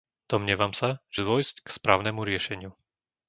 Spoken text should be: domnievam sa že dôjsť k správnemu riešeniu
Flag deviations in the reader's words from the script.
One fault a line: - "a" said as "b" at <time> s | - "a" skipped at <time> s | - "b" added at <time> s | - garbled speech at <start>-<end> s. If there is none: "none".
none